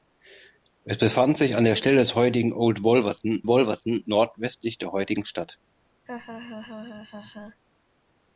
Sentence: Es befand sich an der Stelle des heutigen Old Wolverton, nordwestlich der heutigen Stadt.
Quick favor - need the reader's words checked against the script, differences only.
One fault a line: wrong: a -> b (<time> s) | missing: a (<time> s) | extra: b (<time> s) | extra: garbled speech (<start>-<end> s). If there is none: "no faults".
extra: Wolverton (3.5 s)